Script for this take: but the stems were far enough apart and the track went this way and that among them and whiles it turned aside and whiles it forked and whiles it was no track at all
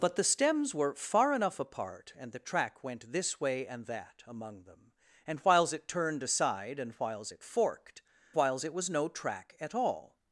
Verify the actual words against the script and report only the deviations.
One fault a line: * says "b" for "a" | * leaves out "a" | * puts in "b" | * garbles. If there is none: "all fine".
* leaves out "and"